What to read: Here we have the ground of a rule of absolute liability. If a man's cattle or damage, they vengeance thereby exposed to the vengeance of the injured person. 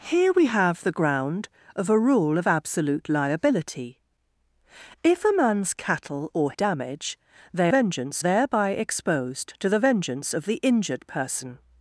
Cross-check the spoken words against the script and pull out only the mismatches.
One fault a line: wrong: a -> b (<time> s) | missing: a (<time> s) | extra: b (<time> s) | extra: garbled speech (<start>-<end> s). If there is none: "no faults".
no faults